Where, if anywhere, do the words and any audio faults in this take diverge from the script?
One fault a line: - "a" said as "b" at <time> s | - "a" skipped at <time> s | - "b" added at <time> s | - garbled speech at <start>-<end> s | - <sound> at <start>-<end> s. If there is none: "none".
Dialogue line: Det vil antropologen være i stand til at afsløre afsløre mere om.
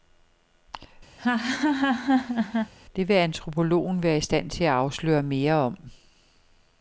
- laugh at 1.2-2.7 s
- "afsløre" skipped at 5.2 s